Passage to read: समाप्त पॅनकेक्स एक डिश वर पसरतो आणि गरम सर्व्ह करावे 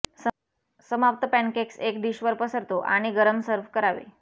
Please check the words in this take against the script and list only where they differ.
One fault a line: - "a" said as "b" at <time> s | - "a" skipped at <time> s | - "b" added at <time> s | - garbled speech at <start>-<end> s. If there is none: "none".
none